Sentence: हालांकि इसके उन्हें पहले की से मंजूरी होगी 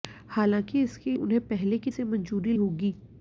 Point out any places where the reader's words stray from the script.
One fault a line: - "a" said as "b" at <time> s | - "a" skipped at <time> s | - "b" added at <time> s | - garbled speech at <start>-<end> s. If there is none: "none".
none